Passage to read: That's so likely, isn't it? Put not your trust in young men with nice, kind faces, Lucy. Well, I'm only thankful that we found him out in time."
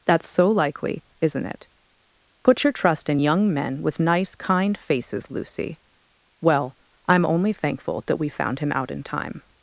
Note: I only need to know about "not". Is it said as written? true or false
false